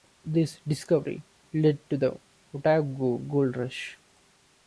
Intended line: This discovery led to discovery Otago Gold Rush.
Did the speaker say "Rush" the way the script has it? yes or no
yes